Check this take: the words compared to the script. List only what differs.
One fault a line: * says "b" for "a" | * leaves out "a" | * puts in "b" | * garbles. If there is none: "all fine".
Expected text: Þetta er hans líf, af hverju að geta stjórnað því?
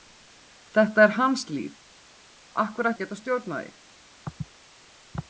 all fine